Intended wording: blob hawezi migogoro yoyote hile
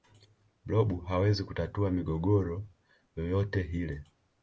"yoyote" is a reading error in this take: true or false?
false